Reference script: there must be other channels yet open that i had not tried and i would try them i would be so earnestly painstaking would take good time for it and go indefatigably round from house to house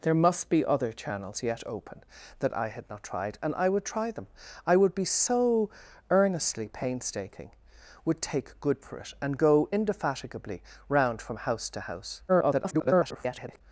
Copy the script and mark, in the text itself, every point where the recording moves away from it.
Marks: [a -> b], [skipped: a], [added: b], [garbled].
there must be other channels yet open that i had not tried and i would try them i would be so earnestly painstaking would take good [skipped: time] for it and go indefatigably round from house to house [garbled]